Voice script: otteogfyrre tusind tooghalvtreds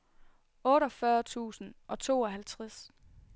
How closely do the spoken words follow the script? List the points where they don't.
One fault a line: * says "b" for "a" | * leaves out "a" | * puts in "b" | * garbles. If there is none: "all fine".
* puts in "og"